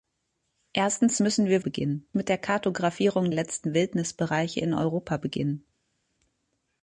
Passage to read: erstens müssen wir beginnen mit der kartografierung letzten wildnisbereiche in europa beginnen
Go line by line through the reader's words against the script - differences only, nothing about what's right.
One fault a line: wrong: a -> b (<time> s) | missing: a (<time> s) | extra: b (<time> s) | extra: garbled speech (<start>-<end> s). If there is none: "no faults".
no faults